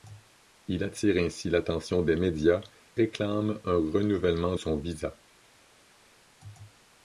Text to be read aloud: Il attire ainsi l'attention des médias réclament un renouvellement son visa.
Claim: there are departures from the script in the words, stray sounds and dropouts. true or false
false